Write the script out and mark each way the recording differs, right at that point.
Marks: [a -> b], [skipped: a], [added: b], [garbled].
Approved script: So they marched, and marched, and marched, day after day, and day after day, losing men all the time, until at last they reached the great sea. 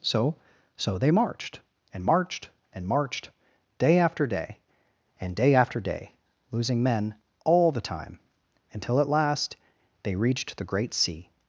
So [added: so] they marched, and marched, and marched, day after day, and day after day, losing men all the time, until at last they reached the great sea.